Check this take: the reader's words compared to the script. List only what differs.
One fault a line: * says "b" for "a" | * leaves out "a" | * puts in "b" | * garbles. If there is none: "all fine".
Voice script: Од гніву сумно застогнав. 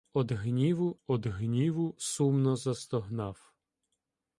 * puts in "од гніву"